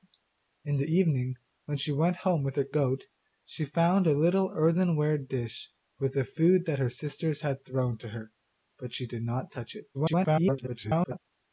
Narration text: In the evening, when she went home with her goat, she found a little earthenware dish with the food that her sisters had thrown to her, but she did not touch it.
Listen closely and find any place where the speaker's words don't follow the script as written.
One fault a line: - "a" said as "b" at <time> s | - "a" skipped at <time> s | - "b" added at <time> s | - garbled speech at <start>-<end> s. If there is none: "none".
- garbled speech at 9.9-11.2 s